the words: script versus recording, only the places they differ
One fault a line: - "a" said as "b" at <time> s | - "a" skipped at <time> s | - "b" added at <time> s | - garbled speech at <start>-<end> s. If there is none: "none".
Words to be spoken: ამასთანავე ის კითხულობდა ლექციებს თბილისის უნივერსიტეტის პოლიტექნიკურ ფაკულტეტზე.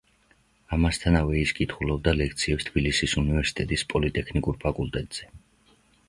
none